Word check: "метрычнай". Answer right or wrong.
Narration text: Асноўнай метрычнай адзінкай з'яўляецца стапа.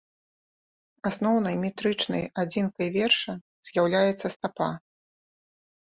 right